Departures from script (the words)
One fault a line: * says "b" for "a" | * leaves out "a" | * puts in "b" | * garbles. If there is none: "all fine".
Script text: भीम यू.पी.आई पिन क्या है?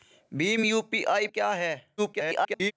* leaves out "पिन"
* garbles